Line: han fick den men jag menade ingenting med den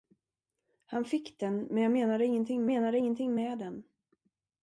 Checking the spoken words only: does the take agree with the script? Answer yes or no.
no